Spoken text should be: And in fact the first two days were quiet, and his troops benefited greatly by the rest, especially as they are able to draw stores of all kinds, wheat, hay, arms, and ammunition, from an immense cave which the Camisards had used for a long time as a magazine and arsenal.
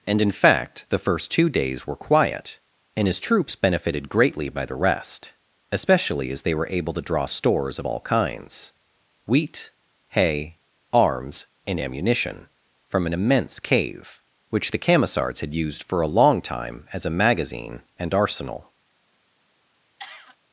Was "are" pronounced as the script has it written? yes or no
no